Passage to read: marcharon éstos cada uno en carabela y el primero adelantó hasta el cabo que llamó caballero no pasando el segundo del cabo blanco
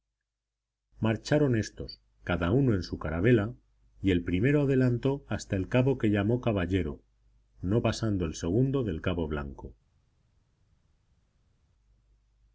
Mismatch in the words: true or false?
true